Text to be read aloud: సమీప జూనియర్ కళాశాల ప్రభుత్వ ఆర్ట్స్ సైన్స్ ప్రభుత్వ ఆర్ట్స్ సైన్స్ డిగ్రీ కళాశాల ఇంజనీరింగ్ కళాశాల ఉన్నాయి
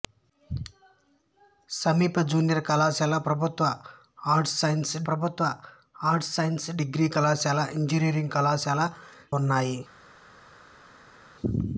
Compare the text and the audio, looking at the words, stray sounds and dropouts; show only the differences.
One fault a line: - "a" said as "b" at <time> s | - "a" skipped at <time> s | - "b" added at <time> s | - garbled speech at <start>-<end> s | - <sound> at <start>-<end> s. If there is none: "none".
none